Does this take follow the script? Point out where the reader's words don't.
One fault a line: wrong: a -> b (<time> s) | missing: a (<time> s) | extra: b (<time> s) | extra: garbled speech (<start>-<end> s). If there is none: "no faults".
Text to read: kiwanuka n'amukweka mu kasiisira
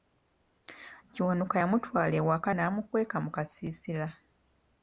extra: yamutwala ewaka (1.6 s)